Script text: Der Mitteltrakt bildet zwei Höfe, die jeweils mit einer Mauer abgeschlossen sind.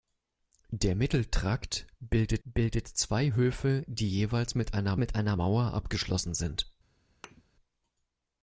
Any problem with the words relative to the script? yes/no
yes